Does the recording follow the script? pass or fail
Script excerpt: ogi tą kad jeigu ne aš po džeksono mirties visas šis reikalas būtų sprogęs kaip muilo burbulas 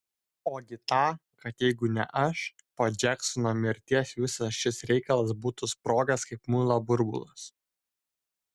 pass